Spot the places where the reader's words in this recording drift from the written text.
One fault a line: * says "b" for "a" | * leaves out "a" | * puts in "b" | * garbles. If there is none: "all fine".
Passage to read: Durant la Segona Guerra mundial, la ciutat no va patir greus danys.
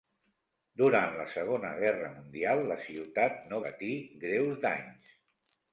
* leaves out "va"